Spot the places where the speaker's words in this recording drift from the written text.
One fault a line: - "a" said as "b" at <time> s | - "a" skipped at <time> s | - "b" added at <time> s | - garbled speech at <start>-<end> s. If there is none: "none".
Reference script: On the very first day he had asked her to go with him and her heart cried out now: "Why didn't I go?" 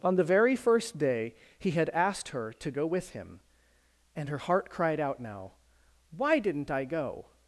none